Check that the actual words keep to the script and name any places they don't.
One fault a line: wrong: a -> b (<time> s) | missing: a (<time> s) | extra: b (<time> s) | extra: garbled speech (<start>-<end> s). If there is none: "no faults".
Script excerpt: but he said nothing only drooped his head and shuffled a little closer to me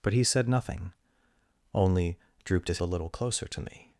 missing: head and shuffled (2.8 s)